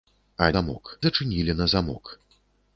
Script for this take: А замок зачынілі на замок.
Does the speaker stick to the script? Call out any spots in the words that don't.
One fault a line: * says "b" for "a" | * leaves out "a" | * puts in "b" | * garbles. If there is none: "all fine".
all fine